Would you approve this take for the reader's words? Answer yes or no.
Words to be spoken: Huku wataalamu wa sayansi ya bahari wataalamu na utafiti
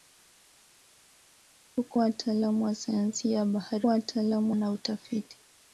yes